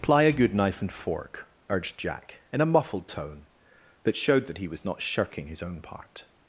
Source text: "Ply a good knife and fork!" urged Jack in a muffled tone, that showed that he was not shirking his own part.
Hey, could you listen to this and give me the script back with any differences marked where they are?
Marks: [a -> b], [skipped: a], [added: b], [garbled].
"Ply a good knife and fork!" urged Jack in a muffled tone, that showed that he was not shirking his own part.